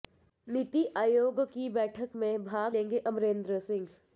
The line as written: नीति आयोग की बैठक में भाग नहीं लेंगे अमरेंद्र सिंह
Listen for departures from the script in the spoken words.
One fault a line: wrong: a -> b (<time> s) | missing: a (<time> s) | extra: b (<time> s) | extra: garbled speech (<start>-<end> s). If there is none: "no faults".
missing: नहीं (2.8 s)